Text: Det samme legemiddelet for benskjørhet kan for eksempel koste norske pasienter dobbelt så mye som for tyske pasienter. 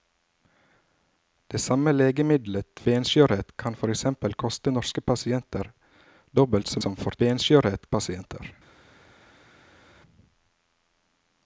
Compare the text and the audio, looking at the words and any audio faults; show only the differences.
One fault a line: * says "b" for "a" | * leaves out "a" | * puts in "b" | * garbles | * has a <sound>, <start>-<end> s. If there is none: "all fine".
* leaves out "for"
* leaves out "mye"
* says "benskjørhet" for "tyske"